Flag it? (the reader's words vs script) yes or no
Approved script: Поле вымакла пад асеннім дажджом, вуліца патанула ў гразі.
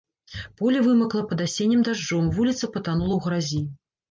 no